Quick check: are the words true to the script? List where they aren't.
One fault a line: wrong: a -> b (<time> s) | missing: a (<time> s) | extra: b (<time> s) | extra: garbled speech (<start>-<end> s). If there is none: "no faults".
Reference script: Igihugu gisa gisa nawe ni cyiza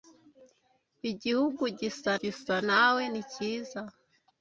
no faults